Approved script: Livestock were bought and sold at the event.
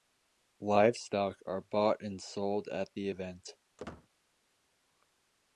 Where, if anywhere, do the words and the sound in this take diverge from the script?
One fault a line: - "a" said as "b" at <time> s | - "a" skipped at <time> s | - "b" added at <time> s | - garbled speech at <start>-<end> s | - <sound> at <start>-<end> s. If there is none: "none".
- "were" said as "are" at 1.4 s
- squeak at 3.8-4.1 s